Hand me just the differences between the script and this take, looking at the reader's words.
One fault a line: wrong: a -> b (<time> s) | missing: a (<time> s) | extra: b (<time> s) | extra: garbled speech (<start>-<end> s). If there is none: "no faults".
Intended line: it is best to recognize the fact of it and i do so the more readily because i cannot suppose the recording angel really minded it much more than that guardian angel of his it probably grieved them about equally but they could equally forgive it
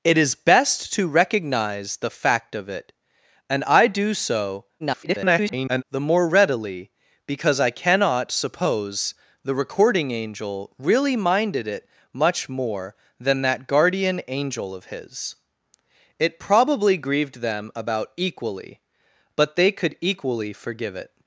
extra: garbled speech (4.8-5.8 s)